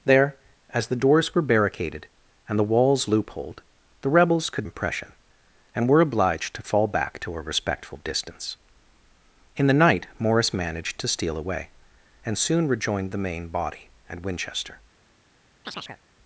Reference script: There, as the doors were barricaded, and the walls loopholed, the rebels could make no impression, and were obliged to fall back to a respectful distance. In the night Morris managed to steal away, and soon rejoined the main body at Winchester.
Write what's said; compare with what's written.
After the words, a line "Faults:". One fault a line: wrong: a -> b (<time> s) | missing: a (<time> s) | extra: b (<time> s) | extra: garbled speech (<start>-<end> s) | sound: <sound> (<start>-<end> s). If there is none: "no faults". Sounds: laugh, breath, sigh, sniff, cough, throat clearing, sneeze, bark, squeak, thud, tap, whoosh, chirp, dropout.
There, as the doors were barricaded, and the walls loopholed, the rebels could impression, and were obliged to fall back to a respectful distance. In the night Morris managed to steal away, and soon rejoined the main body at Winchester.
Faults:
missing: make no (4.7 s)
sound: chirp (15.6-16.0 s)